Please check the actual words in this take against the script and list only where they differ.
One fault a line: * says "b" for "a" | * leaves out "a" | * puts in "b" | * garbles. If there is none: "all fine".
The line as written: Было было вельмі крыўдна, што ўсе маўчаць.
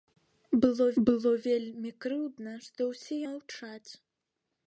all fine